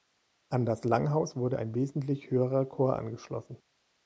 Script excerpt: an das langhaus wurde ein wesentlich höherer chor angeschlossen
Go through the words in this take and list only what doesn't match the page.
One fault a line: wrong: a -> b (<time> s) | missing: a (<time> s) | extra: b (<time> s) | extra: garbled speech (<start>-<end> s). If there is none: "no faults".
no faults